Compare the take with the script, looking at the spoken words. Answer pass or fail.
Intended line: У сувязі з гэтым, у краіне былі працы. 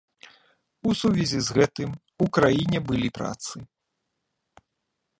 pass